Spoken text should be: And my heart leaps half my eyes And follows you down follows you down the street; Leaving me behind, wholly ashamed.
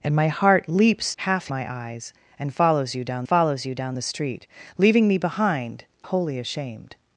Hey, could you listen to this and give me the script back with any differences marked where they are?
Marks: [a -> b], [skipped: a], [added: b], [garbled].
And my heart leaps half my eyes And follows you down follows you down the street; Leaving me behind, wholly ashamed.